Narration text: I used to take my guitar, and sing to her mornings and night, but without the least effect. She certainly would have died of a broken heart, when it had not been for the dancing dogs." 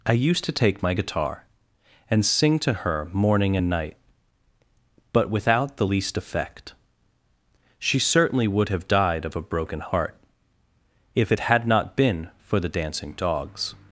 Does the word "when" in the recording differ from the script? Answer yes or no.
yes